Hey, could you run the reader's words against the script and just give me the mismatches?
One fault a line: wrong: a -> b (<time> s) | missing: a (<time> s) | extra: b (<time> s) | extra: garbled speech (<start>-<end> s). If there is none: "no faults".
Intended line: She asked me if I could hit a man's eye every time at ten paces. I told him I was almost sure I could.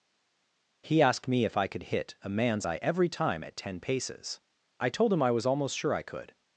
wrong: She -> He (0.8 s)